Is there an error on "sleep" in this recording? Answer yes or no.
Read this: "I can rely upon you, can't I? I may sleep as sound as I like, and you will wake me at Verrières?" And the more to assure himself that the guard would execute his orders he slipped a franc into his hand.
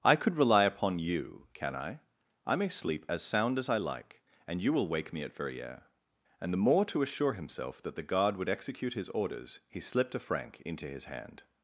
no